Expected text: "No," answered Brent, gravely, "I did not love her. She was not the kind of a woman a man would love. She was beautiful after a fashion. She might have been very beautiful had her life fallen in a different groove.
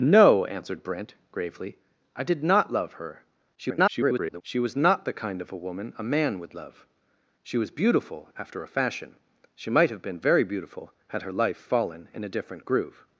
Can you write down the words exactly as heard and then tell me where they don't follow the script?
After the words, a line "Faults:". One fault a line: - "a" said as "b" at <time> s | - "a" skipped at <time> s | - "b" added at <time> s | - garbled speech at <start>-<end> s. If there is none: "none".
"No," answered Brent, gravely, "I did not love her. [garbled] She was not the kind of a woman a man would love. She was beautiful after a fashion. She might have been very beautiful had her life fallen in a different groove.
Faults:
- garbled speech at 3.6-4.4 s